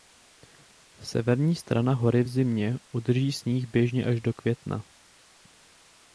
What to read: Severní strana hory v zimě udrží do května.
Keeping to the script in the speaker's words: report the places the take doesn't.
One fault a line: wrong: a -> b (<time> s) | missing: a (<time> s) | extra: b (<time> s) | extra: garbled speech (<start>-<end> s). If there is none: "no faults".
extra: sníh běžně až (3.3 s)